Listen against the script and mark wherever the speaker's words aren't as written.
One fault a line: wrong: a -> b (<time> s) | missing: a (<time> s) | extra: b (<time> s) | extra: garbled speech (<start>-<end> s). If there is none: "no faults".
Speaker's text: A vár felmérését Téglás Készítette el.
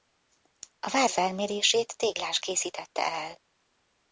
no faults